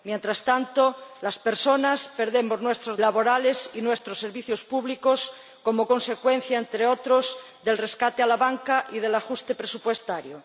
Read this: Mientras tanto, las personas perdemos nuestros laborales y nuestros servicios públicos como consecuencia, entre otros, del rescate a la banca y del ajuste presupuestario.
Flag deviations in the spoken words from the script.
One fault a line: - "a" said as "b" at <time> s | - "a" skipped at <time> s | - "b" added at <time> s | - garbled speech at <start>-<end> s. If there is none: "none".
none